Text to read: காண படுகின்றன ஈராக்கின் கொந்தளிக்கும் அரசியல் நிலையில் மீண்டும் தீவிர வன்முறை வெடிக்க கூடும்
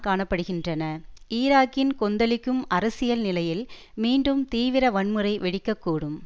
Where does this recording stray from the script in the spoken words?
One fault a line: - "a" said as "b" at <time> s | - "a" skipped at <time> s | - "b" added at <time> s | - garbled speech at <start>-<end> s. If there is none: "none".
none